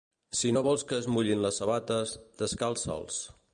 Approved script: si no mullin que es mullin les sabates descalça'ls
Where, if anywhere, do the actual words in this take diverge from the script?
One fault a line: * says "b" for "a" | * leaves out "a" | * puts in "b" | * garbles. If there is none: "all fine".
* says "vols" for "mullin"